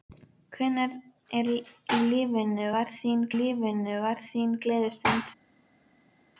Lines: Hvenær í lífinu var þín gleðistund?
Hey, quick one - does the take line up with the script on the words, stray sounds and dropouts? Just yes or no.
no